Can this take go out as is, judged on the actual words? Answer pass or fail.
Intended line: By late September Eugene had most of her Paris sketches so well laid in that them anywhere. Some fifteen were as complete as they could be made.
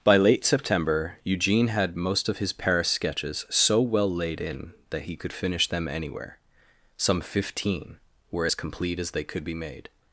fail